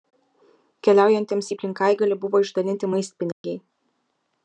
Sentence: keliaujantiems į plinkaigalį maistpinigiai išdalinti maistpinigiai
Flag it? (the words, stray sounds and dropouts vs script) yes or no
yes